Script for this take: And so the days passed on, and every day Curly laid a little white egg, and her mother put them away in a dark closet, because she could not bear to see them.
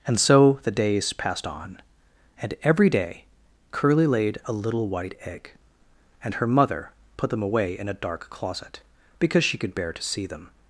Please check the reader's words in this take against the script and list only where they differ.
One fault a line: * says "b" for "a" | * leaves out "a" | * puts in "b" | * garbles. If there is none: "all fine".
* leaves out "not"